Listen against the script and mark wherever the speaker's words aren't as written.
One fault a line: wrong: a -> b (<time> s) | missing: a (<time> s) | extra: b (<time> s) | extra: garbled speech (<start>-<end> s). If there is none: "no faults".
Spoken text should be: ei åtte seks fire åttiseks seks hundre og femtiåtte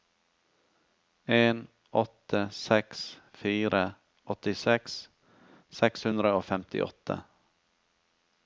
wrong: ei -> en (1.2 s)